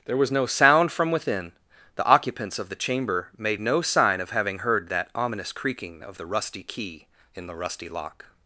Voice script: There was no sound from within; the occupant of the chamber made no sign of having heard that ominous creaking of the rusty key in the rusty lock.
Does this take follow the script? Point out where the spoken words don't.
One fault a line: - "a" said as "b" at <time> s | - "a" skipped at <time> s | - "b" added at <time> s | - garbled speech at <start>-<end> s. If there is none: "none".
- "occupant" said as "occupants" at 2.0 s